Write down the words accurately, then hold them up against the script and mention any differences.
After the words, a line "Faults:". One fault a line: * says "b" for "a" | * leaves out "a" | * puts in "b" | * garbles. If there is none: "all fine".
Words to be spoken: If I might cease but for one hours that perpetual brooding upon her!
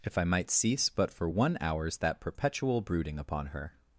If I might cease but for one hours that perpetual brooding upon her!
Faults:
all fine